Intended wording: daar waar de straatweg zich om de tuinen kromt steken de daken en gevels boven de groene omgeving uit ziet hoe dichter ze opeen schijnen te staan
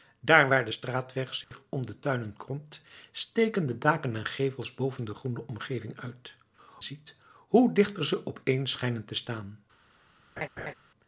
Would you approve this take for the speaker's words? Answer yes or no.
yes